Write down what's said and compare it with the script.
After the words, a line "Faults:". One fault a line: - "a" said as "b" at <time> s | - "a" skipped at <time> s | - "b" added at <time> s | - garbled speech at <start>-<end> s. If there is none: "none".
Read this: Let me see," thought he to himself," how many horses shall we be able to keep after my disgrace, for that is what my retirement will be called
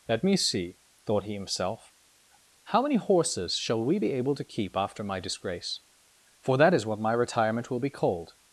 Let me see," thought he himself," how many horses shall we be able to keep after my disgrace, for that is what my retirement will be called
Faults:
- "to" skipped at 1.3 s